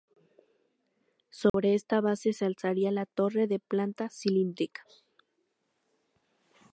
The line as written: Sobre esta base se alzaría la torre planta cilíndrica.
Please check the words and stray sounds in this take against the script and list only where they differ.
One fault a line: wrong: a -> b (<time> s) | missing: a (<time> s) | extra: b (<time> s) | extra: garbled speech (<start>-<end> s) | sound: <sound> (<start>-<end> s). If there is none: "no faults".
sound: dropout (1.5-1.5 s)
extra: de (3.5 s)